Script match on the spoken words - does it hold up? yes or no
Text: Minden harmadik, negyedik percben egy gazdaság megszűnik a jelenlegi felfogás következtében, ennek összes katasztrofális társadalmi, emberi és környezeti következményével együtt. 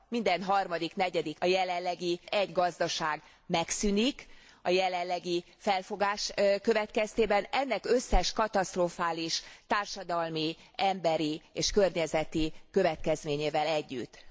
no